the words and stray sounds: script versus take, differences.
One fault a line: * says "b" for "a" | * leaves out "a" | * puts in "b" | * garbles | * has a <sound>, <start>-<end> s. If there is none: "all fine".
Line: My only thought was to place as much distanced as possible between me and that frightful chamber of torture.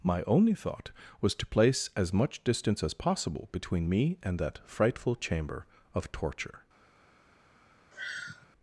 * says "distance" for "distanced"
* has a sigh, 7.9-8.5 s